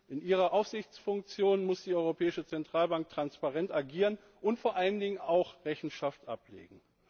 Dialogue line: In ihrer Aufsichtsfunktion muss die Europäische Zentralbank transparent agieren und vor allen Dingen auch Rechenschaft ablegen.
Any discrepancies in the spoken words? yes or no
no